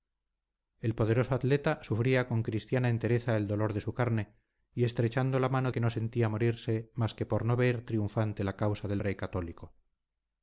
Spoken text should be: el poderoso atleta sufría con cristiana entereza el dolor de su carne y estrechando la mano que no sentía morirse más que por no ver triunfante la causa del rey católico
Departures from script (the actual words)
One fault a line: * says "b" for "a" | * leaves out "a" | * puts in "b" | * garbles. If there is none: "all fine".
all fine